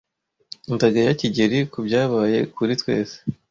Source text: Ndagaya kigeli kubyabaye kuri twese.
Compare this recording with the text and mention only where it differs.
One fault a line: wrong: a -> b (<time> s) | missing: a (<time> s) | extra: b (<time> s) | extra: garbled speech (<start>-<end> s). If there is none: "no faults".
no faults